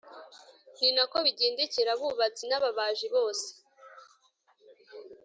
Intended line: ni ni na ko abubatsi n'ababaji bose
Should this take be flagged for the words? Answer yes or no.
yes